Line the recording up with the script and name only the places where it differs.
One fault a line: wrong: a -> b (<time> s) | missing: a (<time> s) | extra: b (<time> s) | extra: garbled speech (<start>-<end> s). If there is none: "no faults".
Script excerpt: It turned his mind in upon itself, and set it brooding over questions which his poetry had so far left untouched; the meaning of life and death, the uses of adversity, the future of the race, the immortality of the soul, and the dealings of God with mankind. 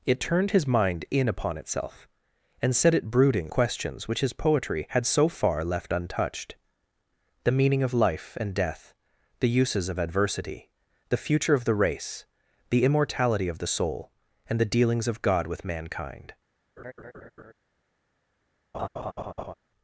missing: over (3.5 s)